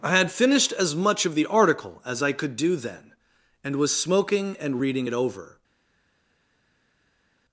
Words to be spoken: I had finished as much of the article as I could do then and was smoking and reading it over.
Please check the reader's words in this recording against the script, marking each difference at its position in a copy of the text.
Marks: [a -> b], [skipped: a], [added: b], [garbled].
I had finished as much of the article as I could do then and was smoking and reading it over.